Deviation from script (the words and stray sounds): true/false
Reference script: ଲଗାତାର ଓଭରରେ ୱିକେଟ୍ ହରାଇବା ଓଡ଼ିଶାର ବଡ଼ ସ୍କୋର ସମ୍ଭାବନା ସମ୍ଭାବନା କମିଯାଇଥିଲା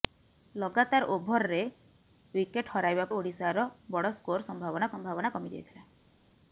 false